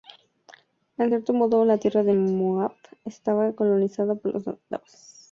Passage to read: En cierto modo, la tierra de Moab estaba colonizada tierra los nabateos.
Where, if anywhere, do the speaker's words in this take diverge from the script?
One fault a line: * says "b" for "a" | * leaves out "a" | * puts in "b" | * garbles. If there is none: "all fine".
* says "por" for "tierra"